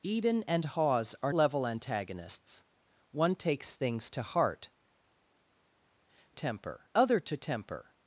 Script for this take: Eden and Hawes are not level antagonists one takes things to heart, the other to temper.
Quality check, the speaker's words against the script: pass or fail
fail